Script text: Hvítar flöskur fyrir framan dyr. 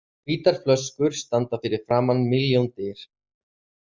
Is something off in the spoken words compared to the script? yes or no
yes